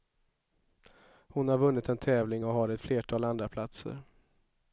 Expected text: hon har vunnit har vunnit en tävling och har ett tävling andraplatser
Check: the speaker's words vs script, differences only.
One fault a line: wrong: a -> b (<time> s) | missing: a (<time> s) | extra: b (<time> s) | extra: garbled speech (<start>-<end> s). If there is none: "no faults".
missing: har vunnit (1.9 s)
wrong: tävling -> flertal (2.8 s)